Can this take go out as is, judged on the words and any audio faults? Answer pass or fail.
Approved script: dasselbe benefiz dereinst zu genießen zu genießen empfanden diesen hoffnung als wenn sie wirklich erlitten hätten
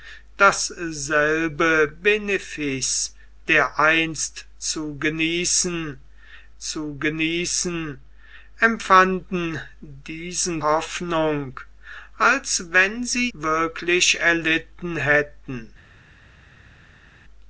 pass